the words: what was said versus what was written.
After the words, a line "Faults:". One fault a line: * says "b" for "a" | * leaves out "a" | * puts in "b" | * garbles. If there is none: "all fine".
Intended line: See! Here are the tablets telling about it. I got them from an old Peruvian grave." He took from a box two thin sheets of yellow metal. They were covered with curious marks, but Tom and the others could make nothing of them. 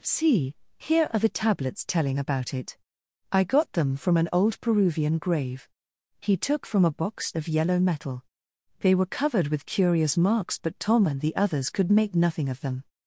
See! Here are the tablets telling about it. I got them from an old Peruvian grave." He took from a box of yellow metal. They were covered with curious marks, but Tom and the others could make nothing of them.
Faults:
* leaves out "two thin sheets"